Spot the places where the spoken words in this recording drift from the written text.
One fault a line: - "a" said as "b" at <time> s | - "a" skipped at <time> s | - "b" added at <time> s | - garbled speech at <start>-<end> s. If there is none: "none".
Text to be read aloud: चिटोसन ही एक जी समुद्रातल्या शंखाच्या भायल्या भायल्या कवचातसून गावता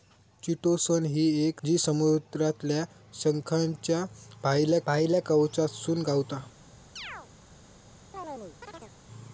none